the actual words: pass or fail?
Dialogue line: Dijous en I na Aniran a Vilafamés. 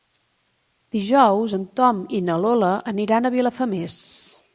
fail